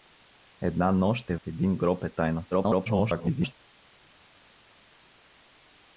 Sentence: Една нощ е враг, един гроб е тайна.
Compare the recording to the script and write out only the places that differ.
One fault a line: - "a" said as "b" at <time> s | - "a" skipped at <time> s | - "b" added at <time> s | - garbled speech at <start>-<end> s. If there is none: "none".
- "враг" skipped at 1.4 s
- garbled speech at 2.5-3.5 s